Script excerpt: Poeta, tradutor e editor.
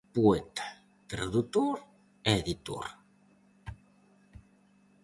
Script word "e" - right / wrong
right